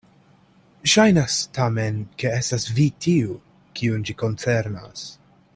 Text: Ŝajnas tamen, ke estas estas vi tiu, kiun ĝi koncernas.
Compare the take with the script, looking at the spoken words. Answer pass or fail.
fail